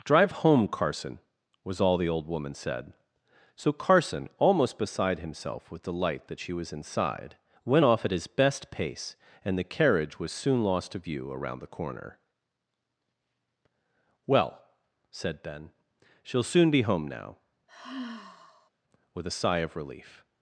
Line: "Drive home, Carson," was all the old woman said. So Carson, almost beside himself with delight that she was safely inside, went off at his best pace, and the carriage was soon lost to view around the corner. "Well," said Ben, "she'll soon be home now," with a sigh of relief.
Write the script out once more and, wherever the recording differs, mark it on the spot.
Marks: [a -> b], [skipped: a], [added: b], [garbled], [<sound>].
"Drive home, Carson," was all the old woman said. So Carson, almost beside himself with delight that she was [skipped: safely] inside, went off at his best pace, and the carriage was soon lost to view around the corner. "Well," said Ben, "she'll soon be home now," [sigh] with a sigh of relief.